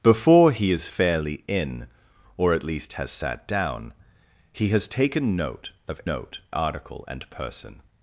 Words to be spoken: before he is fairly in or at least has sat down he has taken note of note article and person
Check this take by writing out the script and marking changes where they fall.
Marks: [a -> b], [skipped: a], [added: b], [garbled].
before he is fairly in or at least has sat down he has taken note of note article and person